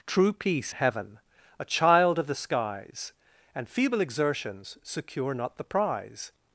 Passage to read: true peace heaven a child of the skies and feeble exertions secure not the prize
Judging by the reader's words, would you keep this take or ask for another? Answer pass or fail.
pass